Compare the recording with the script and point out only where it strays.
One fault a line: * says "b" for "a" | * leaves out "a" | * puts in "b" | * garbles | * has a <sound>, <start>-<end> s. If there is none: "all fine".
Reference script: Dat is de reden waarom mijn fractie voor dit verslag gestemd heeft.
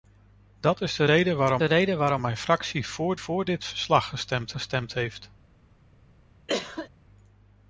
* puts in "de reden waarom"
* puts in "voor"
* puts in "gestemd"
* has a cough, 6.5-6.9 s